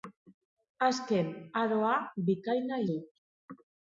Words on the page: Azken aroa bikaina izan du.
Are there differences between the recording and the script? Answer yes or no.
yes